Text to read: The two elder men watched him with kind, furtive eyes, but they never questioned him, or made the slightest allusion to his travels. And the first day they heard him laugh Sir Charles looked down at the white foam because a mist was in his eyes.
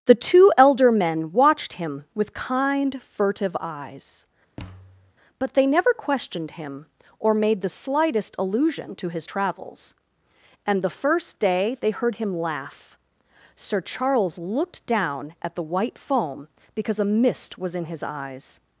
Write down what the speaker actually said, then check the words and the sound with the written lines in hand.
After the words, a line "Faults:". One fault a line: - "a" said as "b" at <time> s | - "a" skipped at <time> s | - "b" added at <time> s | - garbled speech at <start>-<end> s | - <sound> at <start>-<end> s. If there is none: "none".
The two elder men watched him with kind, furtive eyes, but they never questioned him, or made the slightest allusion to his travels. And the first day they heard him laugh Sir Charles looked down at the white foam because a mist was in his eyes.
Faults:
- thud at 4.6-5.1 s